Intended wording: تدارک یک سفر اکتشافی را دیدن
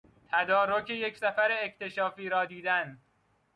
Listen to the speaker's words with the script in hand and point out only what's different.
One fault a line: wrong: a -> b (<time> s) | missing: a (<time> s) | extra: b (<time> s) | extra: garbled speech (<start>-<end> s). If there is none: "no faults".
no faults